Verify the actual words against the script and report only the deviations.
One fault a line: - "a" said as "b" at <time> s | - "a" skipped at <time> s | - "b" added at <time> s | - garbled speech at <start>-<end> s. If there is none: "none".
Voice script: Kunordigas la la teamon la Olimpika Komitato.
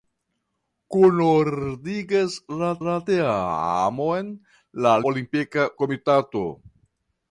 none